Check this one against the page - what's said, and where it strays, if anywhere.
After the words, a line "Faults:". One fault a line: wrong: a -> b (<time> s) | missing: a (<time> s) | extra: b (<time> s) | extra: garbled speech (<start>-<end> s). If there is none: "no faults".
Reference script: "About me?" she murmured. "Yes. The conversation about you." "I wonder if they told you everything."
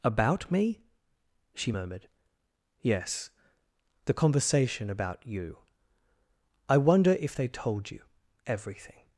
"About me?" she murmured. "Yes. The conversation about you." "I wonder if they told you everything."
Faults:
no faults